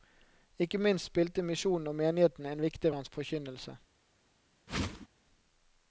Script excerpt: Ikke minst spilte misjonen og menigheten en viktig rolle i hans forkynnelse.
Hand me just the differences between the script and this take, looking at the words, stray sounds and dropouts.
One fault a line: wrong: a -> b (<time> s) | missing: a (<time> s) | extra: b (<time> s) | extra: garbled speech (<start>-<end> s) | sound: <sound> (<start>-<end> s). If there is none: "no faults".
missing: rolle (2.9 s)
sound: whoosh (4.7-5.1 s)